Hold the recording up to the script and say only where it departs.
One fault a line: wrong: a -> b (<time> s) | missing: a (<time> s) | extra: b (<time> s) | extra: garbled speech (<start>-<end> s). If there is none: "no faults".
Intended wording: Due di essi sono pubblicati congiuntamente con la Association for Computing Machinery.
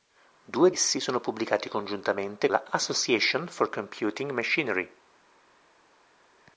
missing: di (0.7 s)
missing: con (2.5 s)